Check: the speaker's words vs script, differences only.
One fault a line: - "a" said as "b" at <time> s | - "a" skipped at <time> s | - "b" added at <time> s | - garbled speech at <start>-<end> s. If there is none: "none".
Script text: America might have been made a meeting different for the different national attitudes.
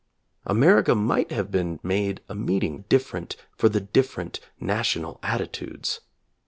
none